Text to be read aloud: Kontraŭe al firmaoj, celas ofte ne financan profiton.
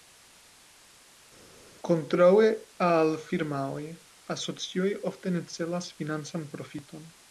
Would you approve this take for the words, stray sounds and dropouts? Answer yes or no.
no